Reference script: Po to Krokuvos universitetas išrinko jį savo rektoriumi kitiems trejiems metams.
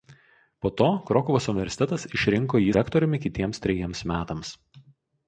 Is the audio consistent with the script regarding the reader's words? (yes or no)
no